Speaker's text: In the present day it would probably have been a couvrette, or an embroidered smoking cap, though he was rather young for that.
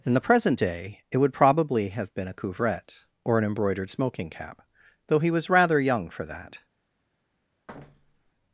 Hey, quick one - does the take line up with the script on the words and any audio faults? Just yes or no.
no